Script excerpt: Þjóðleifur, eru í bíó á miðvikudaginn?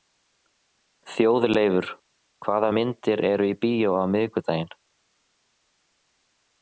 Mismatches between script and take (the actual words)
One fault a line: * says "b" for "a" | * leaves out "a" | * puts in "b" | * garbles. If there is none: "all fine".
* puts in "hvaða myndir"